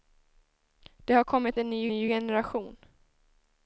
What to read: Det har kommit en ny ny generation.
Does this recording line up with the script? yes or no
yes